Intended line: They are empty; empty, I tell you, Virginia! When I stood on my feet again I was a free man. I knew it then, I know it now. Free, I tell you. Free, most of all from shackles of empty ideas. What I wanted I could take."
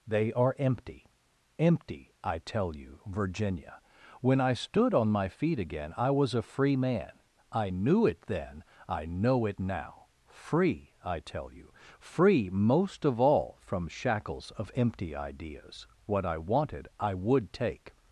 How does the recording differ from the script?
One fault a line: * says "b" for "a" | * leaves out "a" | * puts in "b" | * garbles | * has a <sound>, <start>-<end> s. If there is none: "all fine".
* says "would" for "could"